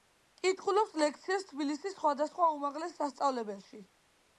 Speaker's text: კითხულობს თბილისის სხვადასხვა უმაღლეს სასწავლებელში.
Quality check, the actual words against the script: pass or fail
fail